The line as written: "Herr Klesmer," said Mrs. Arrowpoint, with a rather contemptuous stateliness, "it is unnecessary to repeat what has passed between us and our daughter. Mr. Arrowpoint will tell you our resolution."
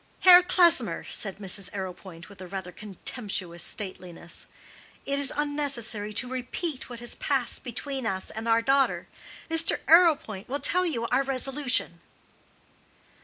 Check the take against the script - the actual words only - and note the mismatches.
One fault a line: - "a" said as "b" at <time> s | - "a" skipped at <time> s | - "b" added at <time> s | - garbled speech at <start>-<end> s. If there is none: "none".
none